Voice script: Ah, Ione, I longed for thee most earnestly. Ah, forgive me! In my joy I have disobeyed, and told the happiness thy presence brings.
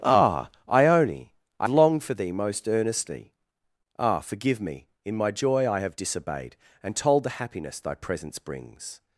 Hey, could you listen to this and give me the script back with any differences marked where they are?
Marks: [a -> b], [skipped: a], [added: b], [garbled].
Ah, Ione, I longed for thee most earnestly. Ah, forgive me! In my joy I have disobeyed, and told the happiness thy presence brings.